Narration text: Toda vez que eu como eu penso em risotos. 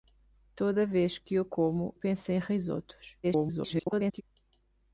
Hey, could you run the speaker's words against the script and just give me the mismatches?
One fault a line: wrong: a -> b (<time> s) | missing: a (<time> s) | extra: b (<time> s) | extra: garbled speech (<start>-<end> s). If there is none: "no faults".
missing: eu (1.9 s)
extra: garbled speech (3.2-4.2 s)